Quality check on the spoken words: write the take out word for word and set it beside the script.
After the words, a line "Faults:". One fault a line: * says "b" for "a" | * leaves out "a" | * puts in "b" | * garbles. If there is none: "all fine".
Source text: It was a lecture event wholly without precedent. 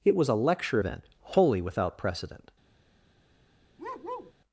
It was a lecture event wholly without precedent.
Faults:
all fine